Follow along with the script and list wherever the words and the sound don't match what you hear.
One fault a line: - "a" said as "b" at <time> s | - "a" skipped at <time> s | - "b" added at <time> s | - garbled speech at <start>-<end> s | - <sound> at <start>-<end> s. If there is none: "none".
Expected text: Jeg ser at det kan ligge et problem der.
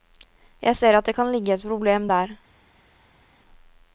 none